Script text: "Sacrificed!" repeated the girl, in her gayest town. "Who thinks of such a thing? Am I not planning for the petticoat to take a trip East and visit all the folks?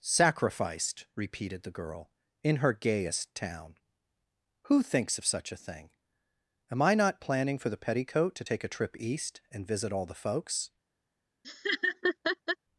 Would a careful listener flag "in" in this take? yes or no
no